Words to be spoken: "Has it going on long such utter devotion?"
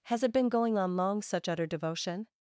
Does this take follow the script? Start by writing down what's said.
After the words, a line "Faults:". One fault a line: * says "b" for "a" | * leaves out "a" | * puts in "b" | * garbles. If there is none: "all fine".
"Has it been going on long such utter devotion?"
Faults:
* puts in "been"